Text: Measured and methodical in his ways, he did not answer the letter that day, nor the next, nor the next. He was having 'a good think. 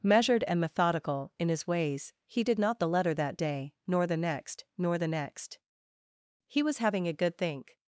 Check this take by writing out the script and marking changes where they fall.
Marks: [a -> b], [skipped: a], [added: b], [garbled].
Measured and methodical in his ways, he did not [skipped: answer] the letter that day, nor the next, nor the next. He was having 'a good think.